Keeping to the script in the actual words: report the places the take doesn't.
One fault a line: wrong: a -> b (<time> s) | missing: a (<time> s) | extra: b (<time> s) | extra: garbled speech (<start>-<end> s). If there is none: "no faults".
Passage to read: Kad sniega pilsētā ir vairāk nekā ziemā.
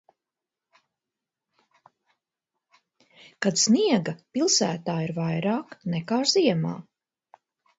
no faults